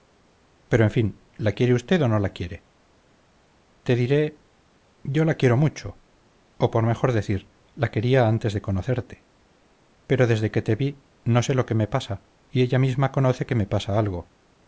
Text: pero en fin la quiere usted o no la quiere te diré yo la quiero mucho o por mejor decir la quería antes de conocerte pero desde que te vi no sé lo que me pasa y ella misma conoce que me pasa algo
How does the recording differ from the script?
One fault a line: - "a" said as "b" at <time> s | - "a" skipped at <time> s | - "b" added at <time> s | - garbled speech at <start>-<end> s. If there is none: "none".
none